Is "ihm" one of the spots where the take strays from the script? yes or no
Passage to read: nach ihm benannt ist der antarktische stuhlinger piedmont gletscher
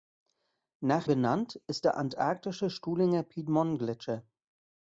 yes